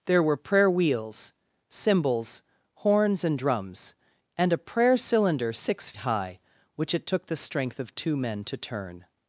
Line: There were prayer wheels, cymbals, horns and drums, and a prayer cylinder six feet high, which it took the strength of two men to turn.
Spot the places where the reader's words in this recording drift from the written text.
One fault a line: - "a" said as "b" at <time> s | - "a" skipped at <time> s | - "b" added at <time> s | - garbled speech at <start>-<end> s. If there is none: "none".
- "feet" skipped at 5.9 s